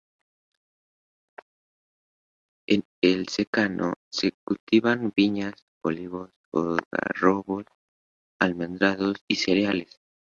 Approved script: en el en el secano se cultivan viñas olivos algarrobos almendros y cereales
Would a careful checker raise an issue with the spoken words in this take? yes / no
yes